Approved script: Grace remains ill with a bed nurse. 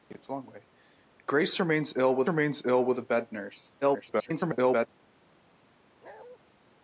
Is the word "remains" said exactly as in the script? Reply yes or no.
yes